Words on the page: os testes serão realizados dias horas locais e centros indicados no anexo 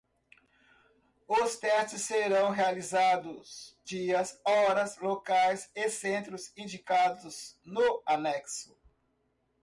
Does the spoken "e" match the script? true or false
true